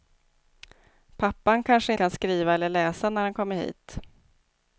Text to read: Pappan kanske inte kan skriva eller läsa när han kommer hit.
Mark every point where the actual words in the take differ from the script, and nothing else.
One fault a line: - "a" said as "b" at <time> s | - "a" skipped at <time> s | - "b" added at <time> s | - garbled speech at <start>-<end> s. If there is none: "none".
- "inte" skipped at 1.9 s